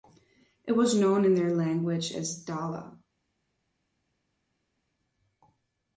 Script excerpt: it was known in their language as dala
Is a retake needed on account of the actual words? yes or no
no